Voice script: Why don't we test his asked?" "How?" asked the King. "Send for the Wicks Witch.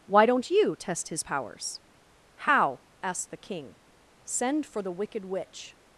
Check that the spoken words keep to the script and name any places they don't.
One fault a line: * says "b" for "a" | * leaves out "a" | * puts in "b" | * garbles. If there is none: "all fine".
* says "you" for "we"
* says "powers" for "asked"
* says "Wicked" for "Wicks"